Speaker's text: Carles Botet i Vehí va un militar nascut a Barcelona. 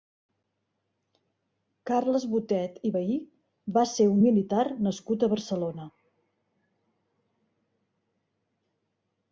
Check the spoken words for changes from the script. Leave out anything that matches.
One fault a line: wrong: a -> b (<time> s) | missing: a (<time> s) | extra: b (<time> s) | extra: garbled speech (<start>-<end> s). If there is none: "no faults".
extra: ser (3.9 s)